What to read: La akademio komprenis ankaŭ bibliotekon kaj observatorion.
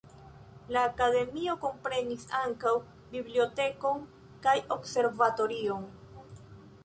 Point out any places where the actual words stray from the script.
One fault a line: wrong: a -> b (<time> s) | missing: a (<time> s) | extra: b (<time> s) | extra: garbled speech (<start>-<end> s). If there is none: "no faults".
no faults